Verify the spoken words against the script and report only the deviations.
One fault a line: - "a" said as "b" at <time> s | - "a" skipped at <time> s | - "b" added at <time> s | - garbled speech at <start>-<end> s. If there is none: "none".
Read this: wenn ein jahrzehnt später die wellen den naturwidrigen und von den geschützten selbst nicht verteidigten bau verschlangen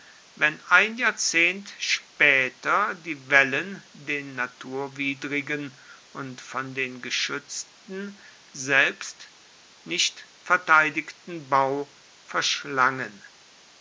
none